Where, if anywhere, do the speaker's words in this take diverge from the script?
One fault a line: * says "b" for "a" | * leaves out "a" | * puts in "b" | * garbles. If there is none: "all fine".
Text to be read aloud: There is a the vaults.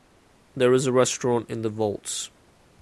* puts in "restaurant in"